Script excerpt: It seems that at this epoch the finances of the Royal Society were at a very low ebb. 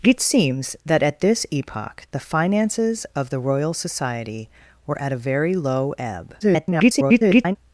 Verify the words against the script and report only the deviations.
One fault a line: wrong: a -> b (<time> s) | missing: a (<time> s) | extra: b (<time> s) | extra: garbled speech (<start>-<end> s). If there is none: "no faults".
extra: garbled speech (6.4-7.6 s)